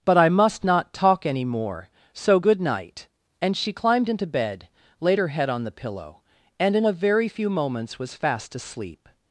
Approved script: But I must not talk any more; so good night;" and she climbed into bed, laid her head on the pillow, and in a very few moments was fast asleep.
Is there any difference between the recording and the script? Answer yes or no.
no